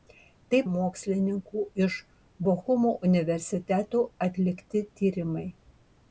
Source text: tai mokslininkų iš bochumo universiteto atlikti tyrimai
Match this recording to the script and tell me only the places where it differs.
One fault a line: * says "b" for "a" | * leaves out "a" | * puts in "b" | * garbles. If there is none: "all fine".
all fine